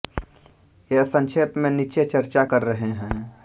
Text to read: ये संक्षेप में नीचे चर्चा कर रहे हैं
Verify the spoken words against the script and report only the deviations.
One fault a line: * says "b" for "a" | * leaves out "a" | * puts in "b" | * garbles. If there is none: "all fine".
all fine